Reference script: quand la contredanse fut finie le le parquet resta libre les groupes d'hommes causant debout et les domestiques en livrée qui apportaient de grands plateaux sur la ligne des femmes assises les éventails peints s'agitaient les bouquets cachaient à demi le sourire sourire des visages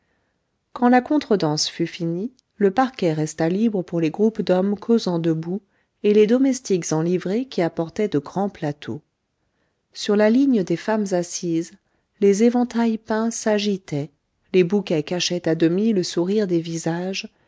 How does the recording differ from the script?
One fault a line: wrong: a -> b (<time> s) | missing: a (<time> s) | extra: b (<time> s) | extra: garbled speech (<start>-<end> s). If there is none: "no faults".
missing: le (2.7 s)
extra: pour (3.8 s)
missing: sourire (16.5 s)